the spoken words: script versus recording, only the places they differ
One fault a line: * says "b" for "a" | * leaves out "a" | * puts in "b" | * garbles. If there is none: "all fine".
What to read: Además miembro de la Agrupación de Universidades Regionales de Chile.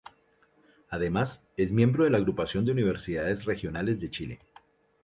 * puts in "es"